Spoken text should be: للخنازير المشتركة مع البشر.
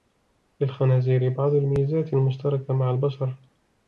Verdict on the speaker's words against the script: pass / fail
fail